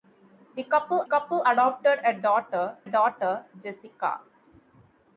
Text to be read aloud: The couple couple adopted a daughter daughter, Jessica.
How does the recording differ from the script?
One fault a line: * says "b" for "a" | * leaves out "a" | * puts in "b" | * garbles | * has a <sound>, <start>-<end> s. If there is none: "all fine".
all fine